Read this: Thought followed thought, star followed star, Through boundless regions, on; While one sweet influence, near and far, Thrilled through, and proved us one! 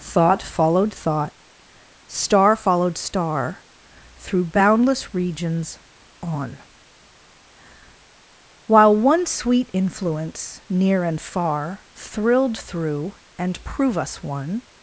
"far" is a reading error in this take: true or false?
false